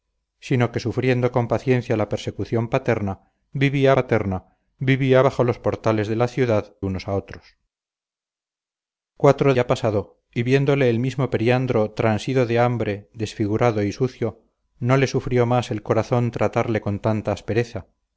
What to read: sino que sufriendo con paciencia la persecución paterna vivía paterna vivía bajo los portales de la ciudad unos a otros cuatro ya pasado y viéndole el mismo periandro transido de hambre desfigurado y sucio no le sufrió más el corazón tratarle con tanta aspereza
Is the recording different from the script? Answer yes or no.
no